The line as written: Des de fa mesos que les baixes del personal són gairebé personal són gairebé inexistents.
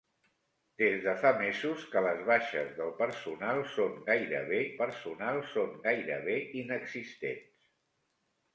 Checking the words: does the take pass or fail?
pass